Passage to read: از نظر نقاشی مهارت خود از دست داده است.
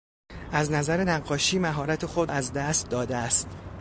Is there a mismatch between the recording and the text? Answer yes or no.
no